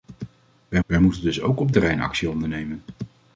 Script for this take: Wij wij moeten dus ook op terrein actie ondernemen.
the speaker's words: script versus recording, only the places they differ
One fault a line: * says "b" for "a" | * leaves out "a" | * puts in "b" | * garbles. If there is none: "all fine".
all fine